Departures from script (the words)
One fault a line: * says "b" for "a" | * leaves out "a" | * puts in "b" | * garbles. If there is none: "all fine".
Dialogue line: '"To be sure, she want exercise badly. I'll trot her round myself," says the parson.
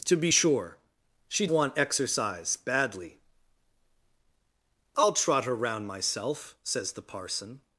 all fine